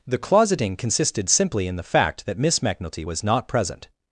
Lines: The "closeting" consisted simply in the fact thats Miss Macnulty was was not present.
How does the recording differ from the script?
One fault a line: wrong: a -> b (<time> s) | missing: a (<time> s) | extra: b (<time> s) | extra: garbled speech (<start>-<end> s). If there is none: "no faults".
wrong: thats -> that (2.2 s)
missing: was (3.2 s)